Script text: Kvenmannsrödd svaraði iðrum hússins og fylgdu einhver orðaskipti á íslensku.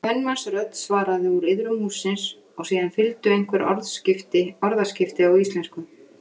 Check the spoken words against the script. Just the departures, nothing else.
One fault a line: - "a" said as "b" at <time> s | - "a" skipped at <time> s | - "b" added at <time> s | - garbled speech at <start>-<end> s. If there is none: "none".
- "úr" added at 1.3 s
- "síðan" added at 2.7 s